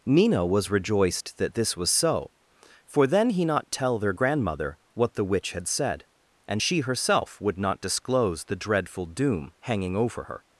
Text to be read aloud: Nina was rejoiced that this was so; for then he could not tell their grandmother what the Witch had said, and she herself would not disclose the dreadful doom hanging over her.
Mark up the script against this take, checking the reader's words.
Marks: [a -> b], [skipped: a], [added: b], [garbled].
Nina was rejoiced that this was so; for then he [skipped: could] not tell their grandmother what the Witch had said, and she herself would not disclose the dreadful doom hanging over her.